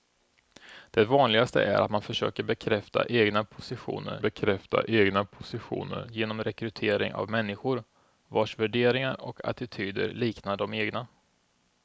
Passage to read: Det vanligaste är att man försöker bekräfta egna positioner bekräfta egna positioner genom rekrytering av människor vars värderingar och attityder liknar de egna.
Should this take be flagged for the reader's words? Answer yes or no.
no